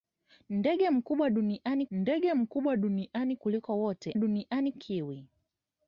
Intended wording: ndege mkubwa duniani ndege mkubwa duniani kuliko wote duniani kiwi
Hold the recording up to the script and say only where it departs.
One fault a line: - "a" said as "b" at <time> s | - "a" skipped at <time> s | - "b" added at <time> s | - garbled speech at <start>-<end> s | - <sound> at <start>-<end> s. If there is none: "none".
none